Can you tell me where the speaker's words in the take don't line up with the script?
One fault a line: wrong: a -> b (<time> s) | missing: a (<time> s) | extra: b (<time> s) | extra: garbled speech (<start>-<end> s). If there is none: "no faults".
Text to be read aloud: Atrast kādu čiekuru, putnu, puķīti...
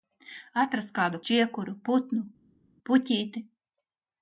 no faults